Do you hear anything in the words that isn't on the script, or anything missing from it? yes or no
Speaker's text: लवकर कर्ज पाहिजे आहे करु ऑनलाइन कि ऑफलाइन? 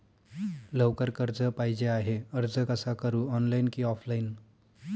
yes